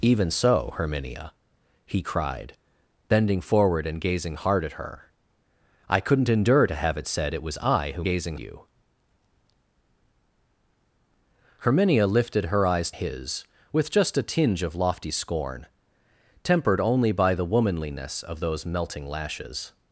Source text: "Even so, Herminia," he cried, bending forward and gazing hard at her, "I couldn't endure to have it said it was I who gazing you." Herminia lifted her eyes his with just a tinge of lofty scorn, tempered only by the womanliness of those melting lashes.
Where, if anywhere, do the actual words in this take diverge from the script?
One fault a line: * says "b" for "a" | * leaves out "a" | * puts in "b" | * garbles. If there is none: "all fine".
all fine